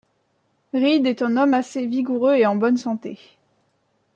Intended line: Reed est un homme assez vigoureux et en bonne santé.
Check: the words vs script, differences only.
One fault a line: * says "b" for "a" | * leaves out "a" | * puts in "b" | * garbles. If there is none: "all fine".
all fine